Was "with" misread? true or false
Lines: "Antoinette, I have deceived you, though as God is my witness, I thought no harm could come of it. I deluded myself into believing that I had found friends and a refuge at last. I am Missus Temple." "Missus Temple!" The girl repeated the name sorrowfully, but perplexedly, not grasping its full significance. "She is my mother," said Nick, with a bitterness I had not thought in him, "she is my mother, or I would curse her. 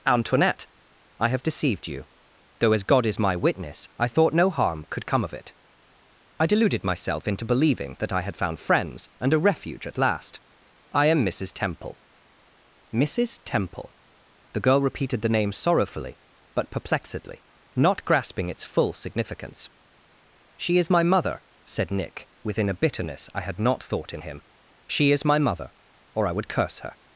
true